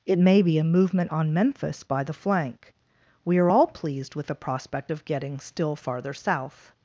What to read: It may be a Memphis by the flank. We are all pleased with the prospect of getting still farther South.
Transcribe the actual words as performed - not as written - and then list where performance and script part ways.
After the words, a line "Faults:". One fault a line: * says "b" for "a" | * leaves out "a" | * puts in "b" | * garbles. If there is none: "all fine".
It may be a movement on Memphis by the flank. We are all pleased with the prospect of getting still farther South.
Faults:
* puts in "movement on"